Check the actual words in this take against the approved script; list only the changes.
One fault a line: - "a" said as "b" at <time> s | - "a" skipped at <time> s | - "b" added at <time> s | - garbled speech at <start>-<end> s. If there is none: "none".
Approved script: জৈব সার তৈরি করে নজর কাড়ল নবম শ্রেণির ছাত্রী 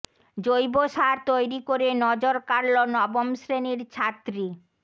none